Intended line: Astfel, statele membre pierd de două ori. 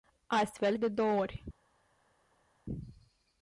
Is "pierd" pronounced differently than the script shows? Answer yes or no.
yes